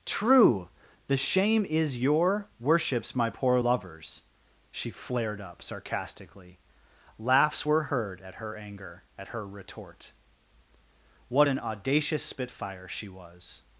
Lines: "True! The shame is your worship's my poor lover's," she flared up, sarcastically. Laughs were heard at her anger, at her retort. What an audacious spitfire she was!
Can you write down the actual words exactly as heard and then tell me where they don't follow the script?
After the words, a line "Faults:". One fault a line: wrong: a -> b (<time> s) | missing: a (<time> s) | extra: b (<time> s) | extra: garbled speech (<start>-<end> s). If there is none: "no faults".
"True! The shame is your worship's my poor lover's," she flared up, sarcastically. Laughs were heard at her anger, at her retort. What an audacious spitfire she was!
Faults:
no faults